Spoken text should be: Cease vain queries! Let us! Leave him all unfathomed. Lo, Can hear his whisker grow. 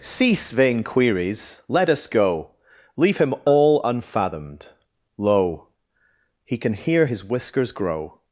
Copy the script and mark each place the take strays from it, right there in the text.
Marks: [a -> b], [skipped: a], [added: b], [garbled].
Cease vain queries! Let us! [added: go] Leave him all unfathomed. Lo, [added: He] Can hear his [whisker -> whiskers] grow.